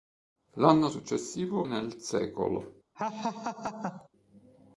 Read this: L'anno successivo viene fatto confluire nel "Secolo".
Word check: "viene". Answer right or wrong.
wrong